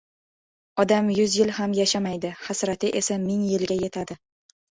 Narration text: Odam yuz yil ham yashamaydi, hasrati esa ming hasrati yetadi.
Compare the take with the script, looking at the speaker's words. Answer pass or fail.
fail